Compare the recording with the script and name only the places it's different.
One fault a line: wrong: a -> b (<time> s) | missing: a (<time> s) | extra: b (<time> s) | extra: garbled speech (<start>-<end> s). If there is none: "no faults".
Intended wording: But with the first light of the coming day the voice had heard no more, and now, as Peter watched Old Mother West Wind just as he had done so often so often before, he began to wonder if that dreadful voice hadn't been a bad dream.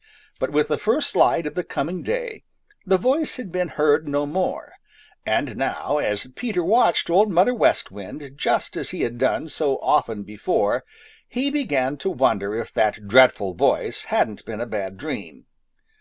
extra: been (3.5 s)
missing: so often (10.2 s)